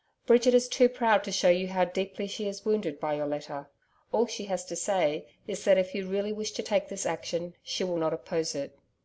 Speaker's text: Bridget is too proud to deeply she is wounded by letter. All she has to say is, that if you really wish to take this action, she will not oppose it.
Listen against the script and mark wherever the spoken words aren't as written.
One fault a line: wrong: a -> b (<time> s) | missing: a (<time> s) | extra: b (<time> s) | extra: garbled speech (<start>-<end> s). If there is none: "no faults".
extra: show you how (1.3 s)
extra: your (3.1 s)